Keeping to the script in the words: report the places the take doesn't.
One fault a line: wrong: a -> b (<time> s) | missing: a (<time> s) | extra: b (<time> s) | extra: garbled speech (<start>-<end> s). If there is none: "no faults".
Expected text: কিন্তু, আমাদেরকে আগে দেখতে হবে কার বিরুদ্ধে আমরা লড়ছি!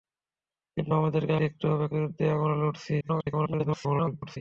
missing: আগে (1.3 s)
missing: কার (1.9 s)
extra: garbled speech (3.0-4.4 s)